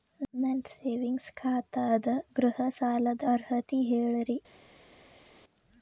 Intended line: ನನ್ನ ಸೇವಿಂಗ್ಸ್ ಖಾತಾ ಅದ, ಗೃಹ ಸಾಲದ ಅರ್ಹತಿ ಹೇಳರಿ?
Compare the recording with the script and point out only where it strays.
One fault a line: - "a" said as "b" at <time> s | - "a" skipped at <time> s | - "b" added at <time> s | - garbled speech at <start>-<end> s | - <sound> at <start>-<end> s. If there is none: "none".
none